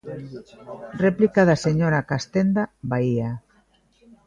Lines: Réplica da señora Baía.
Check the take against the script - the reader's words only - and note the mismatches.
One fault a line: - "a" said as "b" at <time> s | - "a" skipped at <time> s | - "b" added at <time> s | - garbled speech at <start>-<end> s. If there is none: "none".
- "Castenda" added at 2.1 s